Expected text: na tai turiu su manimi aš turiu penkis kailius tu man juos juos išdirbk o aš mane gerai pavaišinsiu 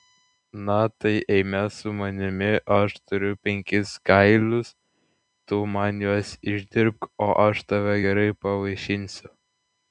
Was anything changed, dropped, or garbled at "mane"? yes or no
yes